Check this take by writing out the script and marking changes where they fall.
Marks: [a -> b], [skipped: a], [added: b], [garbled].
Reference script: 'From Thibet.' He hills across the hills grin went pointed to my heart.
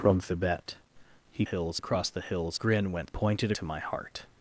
'From Thibet.' He hills across the hills grin went pointed to my heart.